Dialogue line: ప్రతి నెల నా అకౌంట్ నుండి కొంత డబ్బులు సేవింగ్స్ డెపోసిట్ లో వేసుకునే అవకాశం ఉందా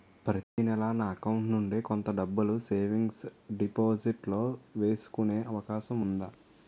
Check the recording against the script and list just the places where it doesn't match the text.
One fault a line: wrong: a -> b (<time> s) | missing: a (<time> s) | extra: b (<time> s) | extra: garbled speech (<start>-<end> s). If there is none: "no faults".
no faults